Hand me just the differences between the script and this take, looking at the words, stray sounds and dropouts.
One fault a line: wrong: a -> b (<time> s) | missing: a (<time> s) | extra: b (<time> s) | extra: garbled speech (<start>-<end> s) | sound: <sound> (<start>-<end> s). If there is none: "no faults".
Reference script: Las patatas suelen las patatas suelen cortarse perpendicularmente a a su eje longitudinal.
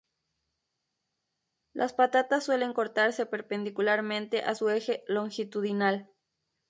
missing: las patatas suelen (2.7 s)
missing: a (4.6 s)